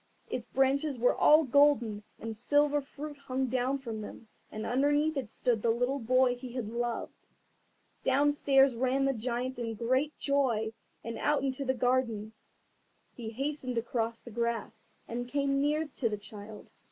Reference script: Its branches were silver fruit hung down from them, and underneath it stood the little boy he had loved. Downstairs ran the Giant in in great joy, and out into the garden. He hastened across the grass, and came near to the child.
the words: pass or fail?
fail